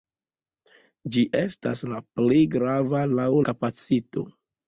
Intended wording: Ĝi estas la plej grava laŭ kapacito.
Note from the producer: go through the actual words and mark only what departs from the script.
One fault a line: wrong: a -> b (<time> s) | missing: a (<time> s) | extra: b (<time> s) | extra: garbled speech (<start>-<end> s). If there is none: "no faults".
no faults